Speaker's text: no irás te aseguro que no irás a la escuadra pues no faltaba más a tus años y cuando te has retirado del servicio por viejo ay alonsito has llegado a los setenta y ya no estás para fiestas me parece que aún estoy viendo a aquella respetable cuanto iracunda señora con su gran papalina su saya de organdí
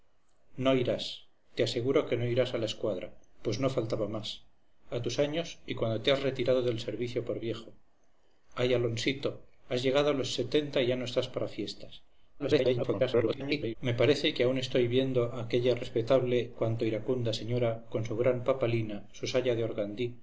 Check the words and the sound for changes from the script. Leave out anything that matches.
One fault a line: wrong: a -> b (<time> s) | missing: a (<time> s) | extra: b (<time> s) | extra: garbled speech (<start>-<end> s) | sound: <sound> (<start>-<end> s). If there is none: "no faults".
extra: garbled speech (12.4-13.8 s)